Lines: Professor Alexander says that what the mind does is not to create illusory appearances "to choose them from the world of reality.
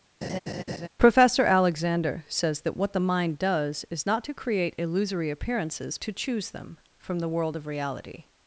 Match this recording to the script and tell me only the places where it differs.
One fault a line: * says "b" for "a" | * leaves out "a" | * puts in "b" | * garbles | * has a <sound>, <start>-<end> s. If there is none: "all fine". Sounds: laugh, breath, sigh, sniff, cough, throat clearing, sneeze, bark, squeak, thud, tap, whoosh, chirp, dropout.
* has a laugh, 0.2-0.9 s